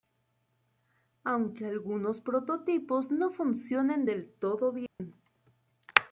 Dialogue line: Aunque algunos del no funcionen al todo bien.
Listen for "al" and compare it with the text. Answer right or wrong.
wrong